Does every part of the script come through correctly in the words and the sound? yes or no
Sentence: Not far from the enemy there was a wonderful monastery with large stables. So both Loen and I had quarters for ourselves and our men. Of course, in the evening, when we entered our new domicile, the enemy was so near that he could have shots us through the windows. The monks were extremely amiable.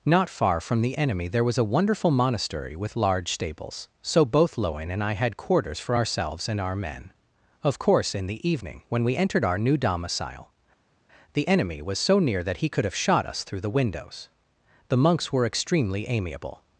no